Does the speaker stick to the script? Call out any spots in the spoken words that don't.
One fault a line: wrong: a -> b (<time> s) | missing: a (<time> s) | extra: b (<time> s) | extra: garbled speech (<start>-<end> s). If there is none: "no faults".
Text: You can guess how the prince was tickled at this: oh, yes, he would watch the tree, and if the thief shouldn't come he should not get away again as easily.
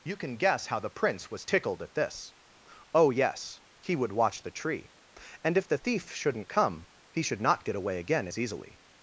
no faults